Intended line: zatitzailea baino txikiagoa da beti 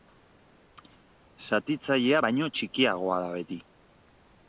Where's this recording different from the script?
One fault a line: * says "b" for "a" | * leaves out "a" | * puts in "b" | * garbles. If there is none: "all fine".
all fine